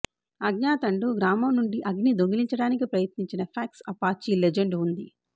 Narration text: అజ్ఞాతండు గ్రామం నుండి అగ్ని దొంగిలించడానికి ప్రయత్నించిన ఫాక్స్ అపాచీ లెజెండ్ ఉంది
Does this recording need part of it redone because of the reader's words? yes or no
no